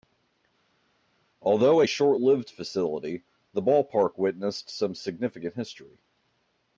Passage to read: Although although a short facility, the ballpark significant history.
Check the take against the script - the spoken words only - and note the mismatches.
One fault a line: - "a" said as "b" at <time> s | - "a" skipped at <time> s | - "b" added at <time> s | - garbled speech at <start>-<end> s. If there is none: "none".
- "although" skipped at 1.8 s
- "lived" added at 2.2 s
- "witnessed some" added at 4.2 s